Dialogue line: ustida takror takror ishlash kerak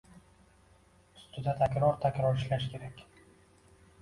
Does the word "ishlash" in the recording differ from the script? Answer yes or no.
no